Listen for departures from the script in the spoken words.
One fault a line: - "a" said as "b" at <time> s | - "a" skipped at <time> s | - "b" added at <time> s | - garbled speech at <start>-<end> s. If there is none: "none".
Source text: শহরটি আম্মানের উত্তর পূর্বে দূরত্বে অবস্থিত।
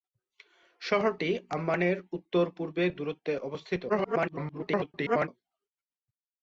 - garbled speech at 3.9-5.3 s